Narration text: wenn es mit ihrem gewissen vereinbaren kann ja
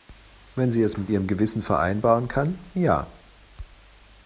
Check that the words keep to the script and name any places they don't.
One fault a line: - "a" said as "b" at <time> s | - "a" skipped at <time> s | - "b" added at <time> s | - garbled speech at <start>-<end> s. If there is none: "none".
- "sie" added at 0.7 s